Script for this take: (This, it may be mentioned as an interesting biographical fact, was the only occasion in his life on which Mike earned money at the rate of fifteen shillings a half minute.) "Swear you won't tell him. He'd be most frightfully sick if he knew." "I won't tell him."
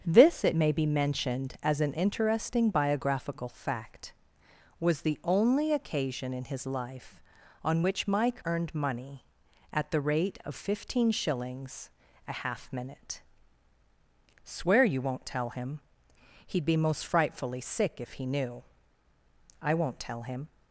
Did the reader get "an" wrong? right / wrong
right